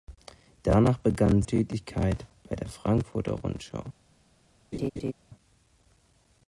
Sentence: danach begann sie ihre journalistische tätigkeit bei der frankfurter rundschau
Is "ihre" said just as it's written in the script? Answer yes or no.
no